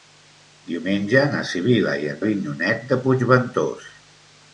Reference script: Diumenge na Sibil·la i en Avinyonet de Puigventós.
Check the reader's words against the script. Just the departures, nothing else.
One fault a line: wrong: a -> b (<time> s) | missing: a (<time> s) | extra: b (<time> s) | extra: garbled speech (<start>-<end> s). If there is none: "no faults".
no faults